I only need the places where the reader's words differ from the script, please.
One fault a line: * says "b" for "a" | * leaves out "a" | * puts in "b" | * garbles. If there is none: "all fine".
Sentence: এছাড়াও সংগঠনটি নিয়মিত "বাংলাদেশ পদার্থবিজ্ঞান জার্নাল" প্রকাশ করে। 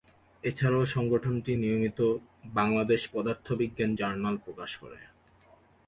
all fine